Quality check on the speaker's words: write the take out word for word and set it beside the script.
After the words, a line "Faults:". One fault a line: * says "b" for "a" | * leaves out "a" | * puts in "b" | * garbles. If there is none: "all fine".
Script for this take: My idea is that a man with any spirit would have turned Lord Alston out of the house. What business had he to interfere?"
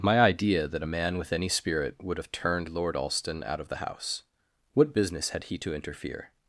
My idea that a man with any spirit would have turned Lord Alston out of the house. What business had he to interfere?"
Faults:
* leaves out "is"